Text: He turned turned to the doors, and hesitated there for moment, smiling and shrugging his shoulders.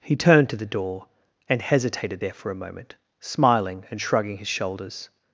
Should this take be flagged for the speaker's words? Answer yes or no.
yes